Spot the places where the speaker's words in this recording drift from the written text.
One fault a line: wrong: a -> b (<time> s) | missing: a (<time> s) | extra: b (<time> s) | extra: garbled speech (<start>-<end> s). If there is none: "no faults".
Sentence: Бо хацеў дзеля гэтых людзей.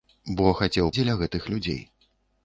no faults